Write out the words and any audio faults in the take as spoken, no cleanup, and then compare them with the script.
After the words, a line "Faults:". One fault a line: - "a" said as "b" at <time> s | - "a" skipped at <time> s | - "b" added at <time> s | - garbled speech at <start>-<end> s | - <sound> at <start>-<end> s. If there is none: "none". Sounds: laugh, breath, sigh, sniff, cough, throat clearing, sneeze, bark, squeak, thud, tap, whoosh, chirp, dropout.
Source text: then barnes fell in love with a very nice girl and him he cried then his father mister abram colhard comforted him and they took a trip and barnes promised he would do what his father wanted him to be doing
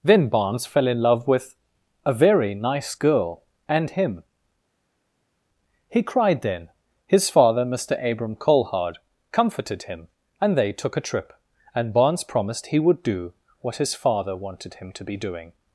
then barnes fell in love with a very nice girl and him he cried then his father mister abram colhard comforted him and they took a trip and barnes promised he would do what his father wanted him to be doing
Faults:
none